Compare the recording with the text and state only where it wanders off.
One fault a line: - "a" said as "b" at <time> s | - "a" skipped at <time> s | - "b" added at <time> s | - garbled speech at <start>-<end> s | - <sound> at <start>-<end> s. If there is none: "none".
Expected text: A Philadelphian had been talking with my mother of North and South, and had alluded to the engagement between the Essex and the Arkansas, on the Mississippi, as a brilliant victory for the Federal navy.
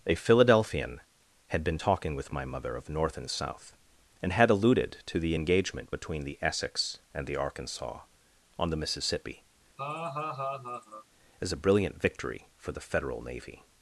- laugh at 9.8-11.1 s